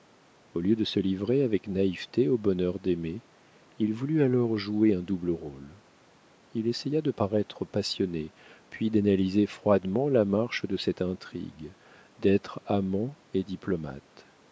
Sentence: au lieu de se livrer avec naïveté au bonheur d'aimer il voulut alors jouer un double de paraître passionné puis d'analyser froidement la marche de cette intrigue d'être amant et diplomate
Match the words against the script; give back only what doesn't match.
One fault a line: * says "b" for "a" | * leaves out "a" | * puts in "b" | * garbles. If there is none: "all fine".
* puts in "rôle il essaya"